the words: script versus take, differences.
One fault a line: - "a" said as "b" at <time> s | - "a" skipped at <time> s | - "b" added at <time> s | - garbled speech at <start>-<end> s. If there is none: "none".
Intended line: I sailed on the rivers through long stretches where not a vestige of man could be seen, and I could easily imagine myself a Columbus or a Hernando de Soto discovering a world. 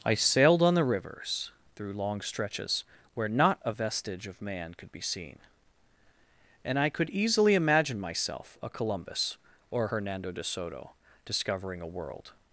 - "a" skipped at 9.9 s